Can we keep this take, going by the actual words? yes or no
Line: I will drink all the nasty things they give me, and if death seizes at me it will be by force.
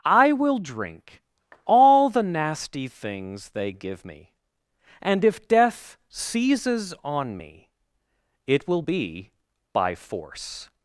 no